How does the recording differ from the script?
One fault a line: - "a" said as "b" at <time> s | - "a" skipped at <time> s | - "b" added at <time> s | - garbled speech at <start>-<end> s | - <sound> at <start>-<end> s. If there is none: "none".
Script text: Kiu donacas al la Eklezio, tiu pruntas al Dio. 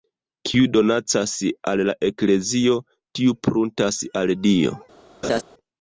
- laugh at 5.2-5.4 s